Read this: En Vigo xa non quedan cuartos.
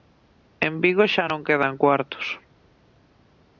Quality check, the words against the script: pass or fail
pass